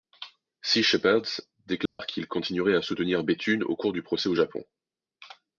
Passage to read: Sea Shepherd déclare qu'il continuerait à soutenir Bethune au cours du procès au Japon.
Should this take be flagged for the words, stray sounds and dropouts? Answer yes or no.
yes